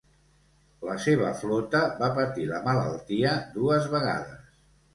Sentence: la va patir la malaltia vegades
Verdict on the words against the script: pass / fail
fail